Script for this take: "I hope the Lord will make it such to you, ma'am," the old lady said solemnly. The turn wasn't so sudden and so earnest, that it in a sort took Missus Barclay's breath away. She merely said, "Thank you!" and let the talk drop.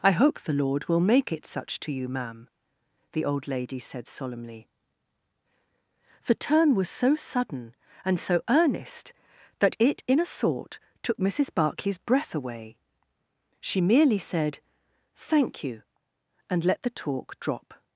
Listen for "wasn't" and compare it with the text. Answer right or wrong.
wrong